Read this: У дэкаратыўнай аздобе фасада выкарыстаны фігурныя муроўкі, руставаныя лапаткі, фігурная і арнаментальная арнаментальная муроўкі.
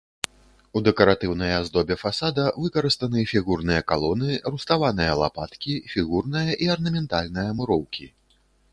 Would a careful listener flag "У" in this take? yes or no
no